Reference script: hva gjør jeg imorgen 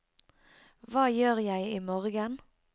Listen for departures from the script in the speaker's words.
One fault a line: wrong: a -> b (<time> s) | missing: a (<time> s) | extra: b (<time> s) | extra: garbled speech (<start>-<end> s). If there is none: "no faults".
no faults